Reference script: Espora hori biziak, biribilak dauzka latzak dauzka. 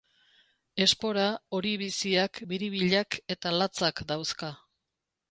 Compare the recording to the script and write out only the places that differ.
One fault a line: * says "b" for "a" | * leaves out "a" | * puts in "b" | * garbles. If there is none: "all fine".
* says "eta" for "dauzka"